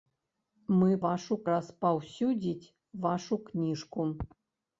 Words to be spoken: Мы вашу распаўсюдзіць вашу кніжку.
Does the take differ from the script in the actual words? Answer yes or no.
no